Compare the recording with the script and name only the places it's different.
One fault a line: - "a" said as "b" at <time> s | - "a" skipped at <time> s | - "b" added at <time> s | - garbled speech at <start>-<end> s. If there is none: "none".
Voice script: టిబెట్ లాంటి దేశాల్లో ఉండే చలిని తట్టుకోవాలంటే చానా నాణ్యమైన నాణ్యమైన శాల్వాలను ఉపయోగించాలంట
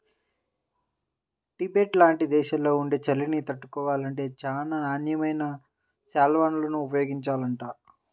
- "నాణ్యమైన" skipped at 5.4 s